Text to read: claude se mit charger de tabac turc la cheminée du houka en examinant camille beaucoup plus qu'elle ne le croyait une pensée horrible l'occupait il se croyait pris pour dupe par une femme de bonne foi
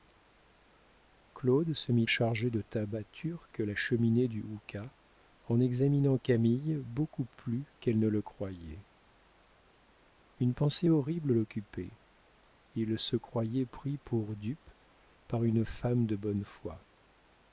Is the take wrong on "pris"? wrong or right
right